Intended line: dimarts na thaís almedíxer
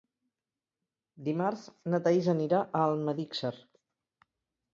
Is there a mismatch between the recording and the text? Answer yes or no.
yes